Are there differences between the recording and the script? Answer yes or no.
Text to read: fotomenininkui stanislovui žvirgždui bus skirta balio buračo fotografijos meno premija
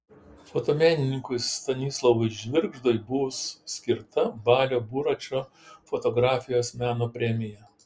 no